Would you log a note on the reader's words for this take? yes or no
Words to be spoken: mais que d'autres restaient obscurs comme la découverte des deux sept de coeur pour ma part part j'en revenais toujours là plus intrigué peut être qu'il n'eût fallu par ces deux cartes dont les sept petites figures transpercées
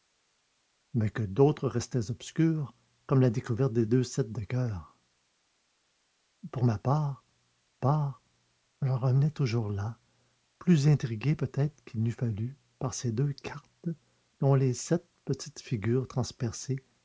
no